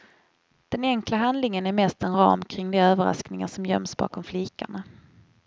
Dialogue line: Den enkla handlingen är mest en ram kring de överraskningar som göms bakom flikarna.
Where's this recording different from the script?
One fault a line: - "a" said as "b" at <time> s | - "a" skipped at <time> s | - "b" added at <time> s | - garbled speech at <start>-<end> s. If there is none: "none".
none